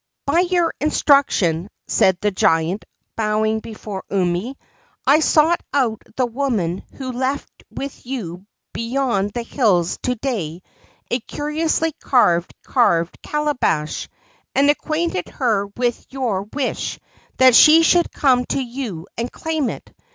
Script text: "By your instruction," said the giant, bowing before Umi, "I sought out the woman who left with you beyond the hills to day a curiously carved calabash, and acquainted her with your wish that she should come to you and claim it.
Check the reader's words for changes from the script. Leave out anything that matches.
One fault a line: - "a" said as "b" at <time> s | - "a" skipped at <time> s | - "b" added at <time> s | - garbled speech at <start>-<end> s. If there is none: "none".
- "carved" added at 12.5 s